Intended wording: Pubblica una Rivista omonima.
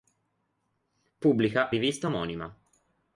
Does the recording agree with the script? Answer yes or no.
no